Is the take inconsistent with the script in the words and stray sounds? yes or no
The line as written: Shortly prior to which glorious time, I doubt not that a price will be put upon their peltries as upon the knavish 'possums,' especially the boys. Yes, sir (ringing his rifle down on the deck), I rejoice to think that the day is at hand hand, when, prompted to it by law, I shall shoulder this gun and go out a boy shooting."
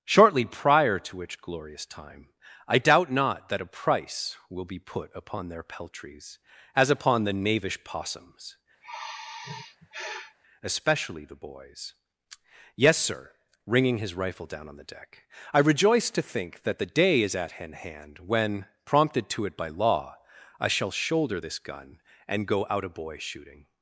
yes